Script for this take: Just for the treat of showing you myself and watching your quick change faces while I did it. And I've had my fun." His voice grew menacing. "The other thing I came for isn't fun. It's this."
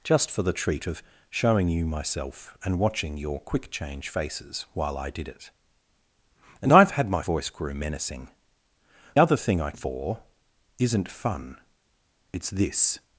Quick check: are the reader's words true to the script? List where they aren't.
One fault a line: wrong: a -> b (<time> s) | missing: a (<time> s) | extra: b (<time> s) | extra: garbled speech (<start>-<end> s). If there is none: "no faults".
missing: fun His (7.2 s)
missing: The (8.3 s)
missing: came (9.7 s)